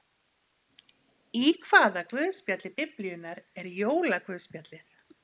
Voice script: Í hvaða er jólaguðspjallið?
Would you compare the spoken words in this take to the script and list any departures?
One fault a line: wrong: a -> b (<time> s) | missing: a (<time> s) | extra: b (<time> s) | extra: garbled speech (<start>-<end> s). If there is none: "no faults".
extra: guðspjalli Biblíunnar (2.1 s)